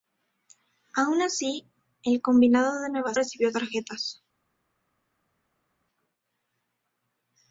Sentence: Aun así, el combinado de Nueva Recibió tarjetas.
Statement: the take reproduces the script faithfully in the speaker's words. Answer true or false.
true